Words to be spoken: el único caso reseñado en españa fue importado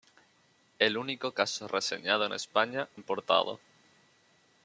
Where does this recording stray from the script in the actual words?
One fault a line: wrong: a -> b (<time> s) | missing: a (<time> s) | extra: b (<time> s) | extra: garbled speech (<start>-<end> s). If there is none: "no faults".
missing: fue (2.9 s)